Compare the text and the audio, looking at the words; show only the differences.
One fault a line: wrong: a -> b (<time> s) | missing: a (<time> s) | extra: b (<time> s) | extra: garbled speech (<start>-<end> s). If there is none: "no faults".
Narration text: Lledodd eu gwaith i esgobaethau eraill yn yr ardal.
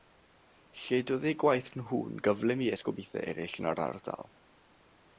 extra: nhw'n gyflym (1.8 s)